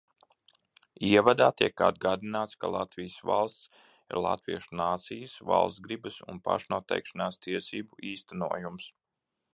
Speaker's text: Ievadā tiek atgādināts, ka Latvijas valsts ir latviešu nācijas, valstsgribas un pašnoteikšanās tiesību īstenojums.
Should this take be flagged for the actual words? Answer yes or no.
no